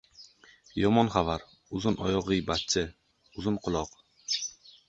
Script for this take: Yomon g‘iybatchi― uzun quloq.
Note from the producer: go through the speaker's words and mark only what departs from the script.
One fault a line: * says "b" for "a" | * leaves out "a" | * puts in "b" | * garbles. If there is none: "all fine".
* puts in "xabar uzun oyoq"